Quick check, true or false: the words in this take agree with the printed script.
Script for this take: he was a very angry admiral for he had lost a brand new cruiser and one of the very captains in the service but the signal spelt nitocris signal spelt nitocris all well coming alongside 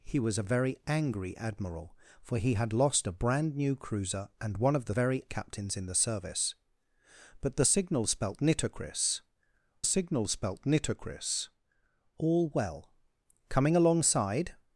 true